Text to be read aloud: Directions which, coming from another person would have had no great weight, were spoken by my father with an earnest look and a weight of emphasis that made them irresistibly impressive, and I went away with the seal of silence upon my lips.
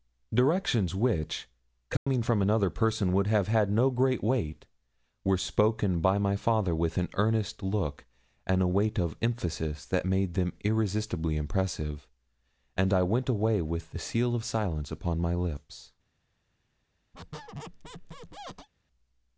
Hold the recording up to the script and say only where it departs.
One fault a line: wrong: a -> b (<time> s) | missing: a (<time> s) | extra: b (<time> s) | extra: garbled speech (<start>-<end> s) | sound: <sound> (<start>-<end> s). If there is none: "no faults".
sound: dropout (2.0-2.1 s)
sound: squeak (17.1-18.7 s)